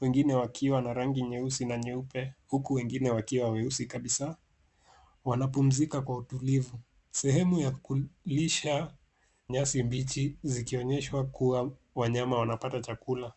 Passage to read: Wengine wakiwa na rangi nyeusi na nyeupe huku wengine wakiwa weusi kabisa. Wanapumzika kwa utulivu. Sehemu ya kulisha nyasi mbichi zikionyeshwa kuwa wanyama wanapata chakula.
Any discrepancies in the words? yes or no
no